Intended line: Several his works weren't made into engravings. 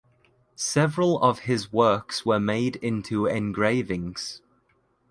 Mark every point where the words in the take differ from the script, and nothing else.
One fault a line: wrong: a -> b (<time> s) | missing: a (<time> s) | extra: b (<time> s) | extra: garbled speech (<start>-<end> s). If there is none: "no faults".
extra: of (1.2 s)
wrong: weren't -> were (2.2 s)